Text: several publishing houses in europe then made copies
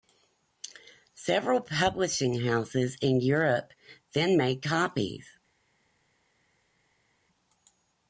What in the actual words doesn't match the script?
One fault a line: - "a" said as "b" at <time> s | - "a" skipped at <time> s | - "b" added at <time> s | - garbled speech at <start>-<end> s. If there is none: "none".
none